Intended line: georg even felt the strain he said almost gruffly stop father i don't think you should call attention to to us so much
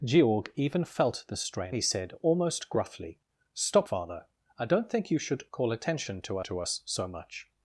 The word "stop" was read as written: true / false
true